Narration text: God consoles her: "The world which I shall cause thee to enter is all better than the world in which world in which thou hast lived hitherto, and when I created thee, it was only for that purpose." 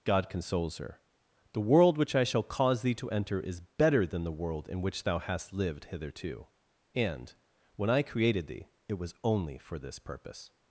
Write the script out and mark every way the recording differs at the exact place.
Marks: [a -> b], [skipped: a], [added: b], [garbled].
God consoles her: "The world which I shall cause thee to enter is [skipped: all] better than the world in which [skipped: world in which] thou hast lived hitherto, and when I created thee, it was only for [that -> this] purpose."